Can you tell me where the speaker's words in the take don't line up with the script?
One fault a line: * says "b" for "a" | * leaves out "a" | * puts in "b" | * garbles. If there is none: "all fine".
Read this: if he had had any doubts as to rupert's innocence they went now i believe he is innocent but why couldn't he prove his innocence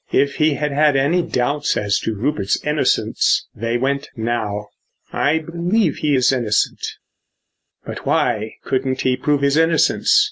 all fine